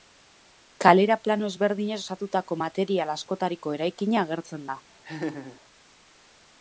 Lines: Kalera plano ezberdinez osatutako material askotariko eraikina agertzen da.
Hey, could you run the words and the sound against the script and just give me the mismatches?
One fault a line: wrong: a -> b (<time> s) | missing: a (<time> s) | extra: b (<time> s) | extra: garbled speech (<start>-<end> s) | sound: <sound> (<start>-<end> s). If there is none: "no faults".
sound: laugh (5.0-5.6 s)